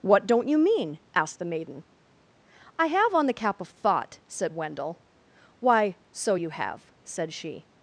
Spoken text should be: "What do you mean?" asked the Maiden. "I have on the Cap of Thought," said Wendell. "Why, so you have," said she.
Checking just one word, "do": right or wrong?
wrong